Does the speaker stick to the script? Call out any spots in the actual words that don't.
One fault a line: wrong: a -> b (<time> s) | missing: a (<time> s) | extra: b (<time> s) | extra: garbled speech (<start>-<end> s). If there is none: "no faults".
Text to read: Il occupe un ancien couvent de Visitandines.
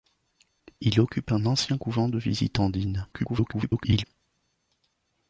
extra: garbled speech (3.1-4.0 s)